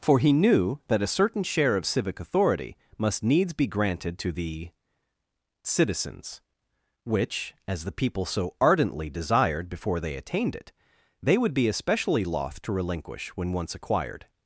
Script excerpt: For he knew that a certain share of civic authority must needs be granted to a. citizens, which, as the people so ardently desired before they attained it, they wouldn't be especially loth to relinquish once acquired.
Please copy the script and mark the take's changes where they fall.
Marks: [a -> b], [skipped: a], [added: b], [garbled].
For he knew that a certain share of civic authority must needs be granted to [a. -> the] citizens, which, as the people so ardently desired before they attained it, they [wouldn't -> would] be especially loth to relinquish [added: when] once acquired.